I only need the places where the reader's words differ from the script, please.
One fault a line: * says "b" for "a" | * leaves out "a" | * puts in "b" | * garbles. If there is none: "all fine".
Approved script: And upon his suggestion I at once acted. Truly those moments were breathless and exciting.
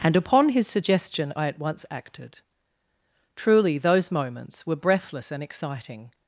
all fine